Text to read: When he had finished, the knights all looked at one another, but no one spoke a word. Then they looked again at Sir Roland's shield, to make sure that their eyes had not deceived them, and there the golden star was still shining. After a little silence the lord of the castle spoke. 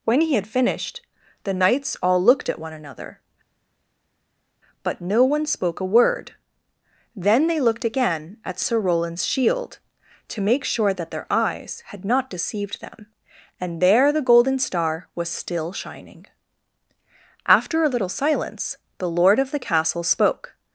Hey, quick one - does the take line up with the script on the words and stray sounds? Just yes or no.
yes